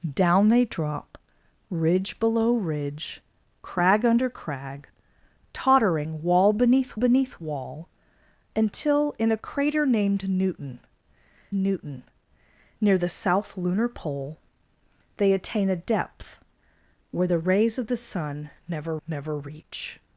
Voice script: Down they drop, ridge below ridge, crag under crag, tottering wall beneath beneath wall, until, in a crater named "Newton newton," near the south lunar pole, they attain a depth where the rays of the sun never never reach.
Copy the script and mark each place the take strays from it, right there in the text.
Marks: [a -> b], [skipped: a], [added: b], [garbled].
Down they drop, ridge below ridge, crag under crag, tottering wall beneath beneath wall, until, in a crater named "Newton newton," near the south lunar pole, they attain a depth where the rays of the sun never never reach.